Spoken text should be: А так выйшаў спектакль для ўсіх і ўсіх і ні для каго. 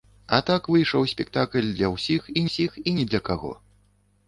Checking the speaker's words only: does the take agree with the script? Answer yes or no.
yes